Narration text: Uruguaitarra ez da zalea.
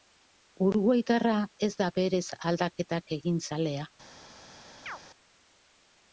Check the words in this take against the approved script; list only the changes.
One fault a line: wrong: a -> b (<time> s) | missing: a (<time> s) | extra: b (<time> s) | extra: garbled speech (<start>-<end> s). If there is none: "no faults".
extra: berez aldaketak egin (2.0 s)